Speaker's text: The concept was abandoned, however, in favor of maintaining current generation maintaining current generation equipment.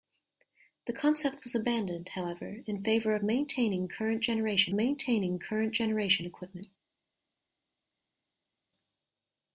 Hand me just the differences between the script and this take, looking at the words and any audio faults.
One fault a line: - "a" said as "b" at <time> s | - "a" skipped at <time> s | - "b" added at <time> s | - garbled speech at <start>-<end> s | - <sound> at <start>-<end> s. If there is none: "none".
none